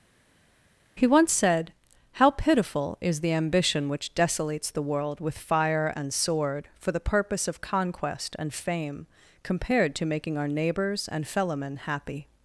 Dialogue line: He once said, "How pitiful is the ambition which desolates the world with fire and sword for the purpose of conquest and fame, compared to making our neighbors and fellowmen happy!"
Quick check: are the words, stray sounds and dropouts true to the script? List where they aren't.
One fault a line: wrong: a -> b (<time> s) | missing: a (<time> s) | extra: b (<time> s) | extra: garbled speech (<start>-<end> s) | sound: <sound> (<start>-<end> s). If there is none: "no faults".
no faults